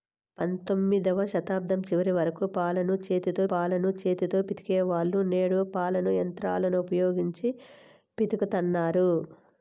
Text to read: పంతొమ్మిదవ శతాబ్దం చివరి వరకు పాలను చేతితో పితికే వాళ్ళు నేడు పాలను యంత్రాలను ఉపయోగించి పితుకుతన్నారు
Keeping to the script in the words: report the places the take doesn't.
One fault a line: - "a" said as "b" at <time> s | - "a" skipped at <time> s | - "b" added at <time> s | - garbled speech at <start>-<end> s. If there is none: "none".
- "పాలను చేతితో" added at 3.5 s